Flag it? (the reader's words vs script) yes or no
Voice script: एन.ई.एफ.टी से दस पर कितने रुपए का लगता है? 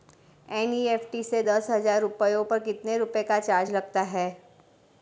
yes